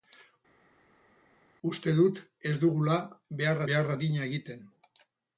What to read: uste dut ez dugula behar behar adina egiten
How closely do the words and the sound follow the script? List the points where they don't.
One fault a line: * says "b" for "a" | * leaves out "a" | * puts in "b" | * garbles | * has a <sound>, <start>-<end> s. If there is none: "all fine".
all fine